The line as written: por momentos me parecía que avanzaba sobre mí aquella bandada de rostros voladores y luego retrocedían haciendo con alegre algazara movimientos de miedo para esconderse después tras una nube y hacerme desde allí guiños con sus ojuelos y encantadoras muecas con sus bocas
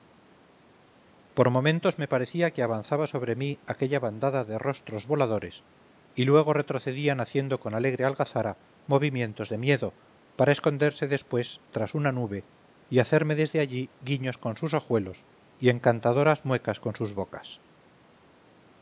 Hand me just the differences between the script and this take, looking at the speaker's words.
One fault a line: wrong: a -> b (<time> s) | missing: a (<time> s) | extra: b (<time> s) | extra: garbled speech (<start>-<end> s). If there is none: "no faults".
no faults